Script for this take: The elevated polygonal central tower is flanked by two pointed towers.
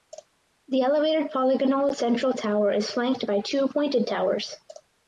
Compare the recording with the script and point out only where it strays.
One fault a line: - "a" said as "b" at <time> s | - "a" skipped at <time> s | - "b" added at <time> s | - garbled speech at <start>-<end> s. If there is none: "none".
none